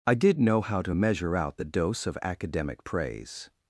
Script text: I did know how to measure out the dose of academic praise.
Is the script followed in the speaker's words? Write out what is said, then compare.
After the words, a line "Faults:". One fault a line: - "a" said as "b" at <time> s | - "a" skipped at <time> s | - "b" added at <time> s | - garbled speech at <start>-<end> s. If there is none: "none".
I did know how to measure out the dose of academic praise.
Faults:
none